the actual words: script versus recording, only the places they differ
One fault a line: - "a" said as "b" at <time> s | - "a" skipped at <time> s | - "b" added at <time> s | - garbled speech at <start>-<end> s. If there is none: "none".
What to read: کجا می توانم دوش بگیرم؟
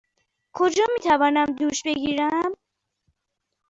none